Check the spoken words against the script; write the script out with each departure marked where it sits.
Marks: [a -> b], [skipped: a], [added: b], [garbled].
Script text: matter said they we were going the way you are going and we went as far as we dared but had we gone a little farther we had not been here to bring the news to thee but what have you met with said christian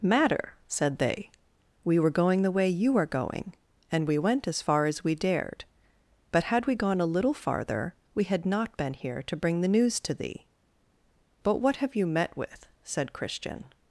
matter said they we were going the way you are going and we went as far as we dared but had we gone a little farther we had not been here to bring the news to thee but what have you met with said christian